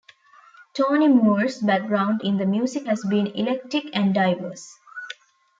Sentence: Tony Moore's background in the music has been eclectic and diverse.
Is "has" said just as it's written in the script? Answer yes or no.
yes